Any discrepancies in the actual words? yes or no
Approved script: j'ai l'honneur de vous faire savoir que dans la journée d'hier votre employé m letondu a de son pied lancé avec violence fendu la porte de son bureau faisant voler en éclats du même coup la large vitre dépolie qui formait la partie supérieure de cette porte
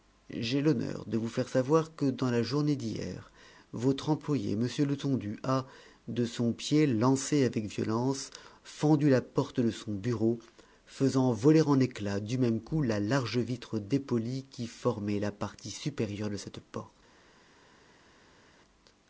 no